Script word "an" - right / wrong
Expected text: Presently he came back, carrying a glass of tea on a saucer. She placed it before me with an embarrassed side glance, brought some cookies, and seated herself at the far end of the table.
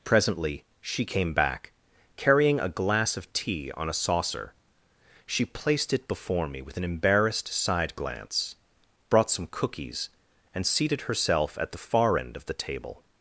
right